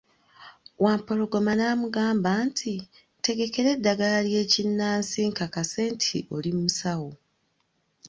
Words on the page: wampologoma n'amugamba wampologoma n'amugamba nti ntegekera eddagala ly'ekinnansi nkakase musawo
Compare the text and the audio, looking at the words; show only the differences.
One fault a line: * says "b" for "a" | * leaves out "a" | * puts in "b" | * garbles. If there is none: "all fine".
* leaves out "wampologoma n'amugamba"
* puts in "nti oli"